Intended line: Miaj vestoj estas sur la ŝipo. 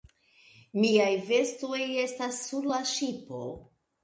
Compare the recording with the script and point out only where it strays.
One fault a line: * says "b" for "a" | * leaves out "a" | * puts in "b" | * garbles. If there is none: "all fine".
all fine